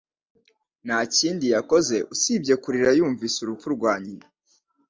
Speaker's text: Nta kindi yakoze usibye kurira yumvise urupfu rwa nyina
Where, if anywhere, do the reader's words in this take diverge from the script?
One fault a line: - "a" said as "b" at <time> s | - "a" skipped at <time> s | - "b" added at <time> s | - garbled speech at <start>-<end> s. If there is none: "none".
none